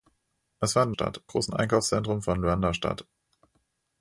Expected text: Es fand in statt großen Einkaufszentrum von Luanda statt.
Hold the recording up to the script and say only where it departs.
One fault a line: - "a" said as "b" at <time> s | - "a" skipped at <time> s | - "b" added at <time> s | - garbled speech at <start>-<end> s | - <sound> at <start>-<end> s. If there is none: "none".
none